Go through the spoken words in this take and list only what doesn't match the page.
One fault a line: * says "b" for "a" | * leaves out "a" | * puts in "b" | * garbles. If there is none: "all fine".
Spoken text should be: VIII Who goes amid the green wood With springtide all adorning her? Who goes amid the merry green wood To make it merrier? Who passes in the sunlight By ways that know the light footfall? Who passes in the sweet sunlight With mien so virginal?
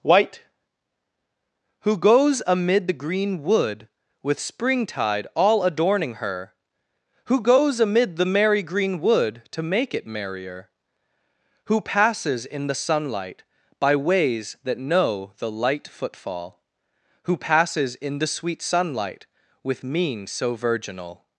* says "White" for "VIII"